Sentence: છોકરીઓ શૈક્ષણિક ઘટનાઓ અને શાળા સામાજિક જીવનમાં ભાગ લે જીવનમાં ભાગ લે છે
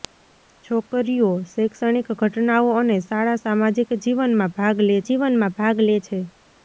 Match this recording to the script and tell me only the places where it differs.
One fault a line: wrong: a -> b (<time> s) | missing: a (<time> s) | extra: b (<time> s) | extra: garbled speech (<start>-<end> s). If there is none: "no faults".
no faults